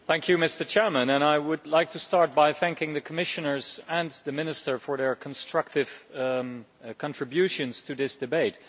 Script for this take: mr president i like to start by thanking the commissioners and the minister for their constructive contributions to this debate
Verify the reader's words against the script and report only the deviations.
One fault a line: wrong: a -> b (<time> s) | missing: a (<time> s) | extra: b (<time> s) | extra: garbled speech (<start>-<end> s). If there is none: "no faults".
extra: would (1.4 s)